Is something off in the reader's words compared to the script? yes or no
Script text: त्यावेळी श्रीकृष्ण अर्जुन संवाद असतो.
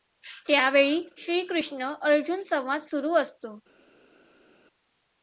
yes